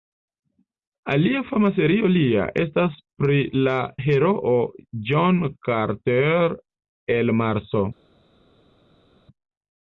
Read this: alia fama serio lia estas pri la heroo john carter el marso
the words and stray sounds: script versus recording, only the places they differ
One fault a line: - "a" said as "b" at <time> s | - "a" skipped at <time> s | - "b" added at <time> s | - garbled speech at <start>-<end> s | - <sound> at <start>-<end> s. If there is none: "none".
none